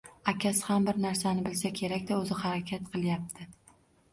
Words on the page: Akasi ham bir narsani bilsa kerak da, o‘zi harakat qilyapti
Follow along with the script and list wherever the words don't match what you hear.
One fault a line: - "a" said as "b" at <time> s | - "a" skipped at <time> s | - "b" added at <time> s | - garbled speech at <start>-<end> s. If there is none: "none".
none